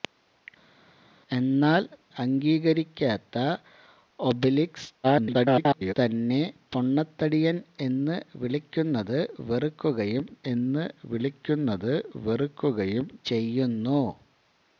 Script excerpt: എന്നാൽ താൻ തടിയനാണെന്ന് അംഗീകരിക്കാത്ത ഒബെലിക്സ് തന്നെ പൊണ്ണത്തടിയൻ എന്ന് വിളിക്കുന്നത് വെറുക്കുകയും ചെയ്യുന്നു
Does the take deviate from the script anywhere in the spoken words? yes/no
yes